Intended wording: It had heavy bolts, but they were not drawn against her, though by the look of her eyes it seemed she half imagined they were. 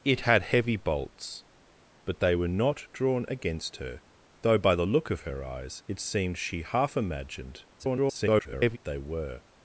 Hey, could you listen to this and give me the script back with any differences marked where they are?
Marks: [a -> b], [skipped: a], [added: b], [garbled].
It had heavy bolts, but they were not drawn against her, though by the look of her eyes it seemed she half imagined [garbled] they were.